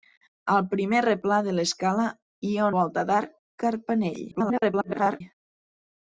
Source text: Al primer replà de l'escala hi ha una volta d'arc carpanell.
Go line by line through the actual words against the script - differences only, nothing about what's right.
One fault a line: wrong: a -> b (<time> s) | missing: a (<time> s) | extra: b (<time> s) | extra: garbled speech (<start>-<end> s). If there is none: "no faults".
missing: una (2.7 s)
extra: garbled speech (4.3-5.2 s)